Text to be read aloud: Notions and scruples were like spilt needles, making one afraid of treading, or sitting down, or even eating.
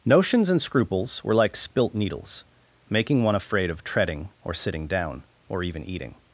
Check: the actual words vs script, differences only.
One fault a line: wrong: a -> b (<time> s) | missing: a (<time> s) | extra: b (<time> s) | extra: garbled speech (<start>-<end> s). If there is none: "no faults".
no faults